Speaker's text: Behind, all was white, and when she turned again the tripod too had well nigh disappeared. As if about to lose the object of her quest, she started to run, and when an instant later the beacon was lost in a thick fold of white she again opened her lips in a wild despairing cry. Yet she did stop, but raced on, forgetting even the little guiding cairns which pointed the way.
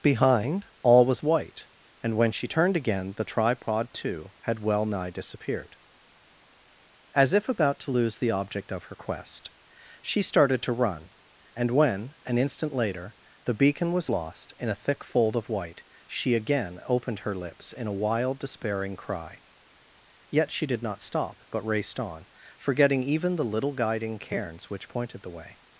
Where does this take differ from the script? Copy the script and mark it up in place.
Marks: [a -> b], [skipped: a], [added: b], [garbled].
Behind, all was white, and when she turned again the tripod too had well nigh disappeared. As if about to lose the object of her quest, she started to run, and when an instant later the beacon was lost in a thick fold of white she again opened her lips in a wild despairing cry. Yet she did [added: not] stop, but raced on, forgetting even the little guiding cairns which pointed the way.